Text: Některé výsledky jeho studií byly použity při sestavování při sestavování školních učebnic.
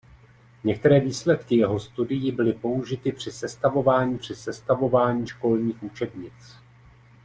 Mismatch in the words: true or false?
false